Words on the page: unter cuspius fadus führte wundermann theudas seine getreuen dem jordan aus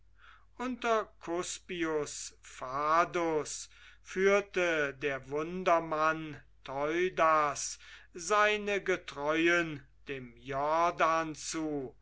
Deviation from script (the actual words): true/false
true